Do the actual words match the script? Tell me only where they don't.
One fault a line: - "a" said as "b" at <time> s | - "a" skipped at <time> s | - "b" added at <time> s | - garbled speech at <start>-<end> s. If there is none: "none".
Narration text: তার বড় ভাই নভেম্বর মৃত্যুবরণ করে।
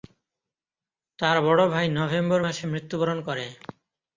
- "মাসে" added at 2.4 s